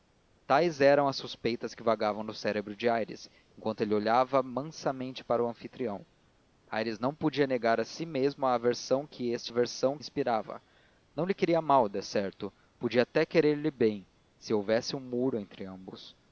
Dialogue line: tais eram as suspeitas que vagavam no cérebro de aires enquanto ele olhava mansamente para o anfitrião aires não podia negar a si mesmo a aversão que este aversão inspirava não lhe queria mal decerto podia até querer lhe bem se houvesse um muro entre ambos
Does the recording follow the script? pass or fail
pass